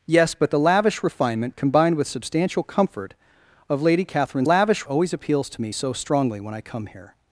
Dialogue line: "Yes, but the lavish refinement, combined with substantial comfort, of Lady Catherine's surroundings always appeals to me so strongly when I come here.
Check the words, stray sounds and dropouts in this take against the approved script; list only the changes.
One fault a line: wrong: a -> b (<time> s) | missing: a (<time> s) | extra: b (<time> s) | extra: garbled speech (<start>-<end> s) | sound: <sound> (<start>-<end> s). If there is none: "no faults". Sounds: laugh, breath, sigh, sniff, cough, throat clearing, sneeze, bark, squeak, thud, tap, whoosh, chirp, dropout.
wrong: surroundings -> lavish (4.4 s)